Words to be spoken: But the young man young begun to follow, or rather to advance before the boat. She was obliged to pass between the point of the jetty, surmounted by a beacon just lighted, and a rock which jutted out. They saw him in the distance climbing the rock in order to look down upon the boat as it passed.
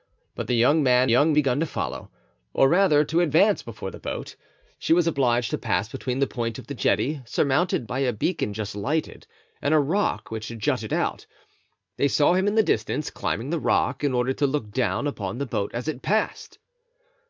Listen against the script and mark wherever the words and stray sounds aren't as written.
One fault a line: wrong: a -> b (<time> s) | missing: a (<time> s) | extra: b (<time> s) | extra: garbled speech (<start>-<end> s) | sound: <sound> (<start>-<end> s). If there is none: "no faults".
no faults